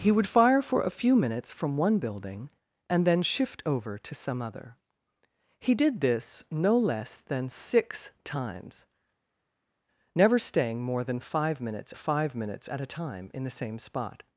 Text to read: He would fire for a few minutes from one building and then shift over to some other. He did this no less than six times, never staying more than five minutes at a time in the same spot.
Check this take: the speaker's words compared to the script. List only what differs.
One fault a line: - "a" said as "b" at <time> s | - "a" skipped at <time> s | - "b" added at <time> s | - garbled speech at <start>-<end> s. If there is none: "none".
- "five minutes" added at 11.9 s